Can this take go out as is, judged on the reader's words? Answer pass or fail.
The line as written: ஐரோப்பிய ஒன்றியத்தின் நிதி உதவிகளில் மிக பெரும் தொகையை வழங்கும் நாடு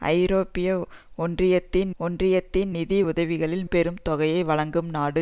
fail